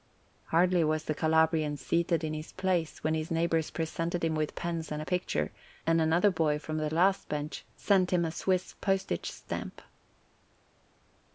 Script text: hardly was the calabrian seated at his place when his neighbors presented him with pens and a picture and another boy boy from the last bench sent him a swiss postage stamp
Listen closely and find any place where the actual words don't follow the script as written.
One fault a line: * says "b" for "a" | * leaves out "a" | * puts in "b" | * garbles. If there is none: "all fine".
* says "in" for "at"
* leaves out "boy"